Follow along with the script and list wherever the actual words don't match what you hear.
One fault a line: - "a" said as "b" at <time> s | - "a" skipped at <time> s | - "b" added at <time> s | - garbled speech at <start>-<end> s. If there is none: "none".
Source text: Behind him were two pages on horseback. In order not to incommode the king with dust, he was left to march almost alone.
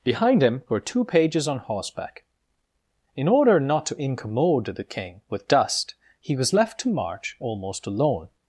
none